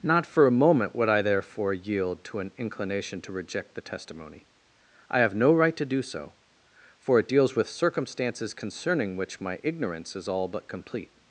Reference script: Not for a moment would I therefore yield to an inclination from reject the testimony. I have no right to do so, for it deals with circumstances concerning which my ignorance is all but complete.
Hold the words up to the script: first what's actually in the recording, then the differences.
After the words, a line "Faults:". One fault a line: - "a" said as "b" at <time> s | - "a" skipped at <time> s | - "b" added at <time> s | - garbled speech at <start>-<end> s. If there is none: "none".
Not for a moment would I therefore yield to an inclination to reject the testimony. I have no right to do so, for it deals with circumstances concerning which my ignorance is all but complete.
Faults:
- "from" said as "to" at 3.2 s